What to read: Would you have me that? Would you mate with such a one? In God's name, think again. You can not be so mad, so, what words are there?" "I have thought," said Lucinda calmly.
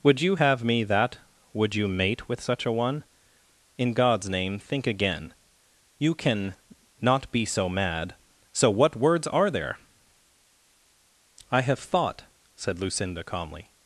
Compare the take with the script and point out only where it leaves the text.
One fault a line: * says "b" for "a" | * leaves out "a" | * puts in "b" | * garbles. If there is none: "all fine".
all fine